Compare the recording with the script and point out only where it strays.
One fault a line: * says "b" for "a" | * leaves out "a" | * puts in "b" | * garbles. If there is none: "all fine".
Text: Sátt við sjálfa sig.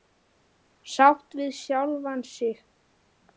all fine